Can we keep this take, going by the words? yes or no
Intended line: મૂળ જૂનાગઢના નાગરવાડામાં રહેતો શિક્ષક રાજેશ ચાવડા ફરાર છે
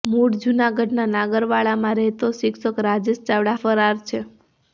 yes